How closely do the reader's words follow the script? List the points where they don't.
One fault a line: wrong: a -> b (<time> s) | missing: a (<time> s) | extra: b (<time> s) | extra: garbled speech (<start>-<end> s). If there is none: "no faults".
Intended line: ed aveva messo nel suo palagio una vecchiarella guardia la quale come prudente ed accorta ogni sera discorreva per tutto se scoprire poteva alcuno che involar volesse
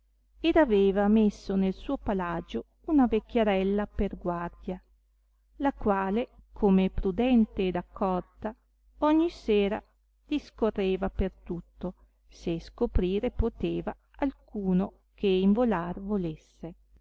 extra: per (3.9 s)